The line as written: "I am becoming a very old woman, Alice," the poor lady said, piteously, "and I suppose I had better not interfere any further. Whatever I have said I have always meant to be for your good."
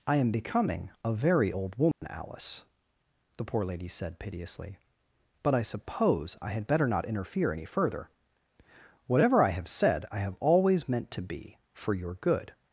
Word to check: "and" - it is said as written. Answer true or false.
false